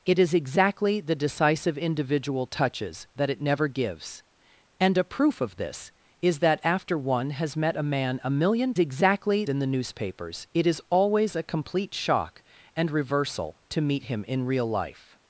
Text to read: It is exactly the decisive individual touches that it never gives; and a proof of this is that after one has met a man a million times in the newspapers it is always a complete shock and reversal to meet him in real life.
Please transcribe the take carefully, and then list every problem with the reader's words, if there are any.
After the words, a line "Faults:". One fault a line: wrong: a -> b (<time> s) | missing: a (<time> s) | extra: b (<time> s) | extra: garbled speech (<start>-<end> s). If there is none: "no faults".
It is exactly the decisive individual touches that it never gives; and a proof of this is that after one has met a man a million exactly in the newspapers it is always a complete shock and reversal to meet him in real life.
Faults:
wrong: times -> exactly (8.8 s)